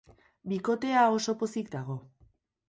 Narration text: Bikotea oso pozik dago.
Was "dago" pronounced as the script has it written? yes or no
yes